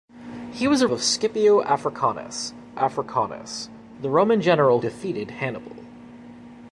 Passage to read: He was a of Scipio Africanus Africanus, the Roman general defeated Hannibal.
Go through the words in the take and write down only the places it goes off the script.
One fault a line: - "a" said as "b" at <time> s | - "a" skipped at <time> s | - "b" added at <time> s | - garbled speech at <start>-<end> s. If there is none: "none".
none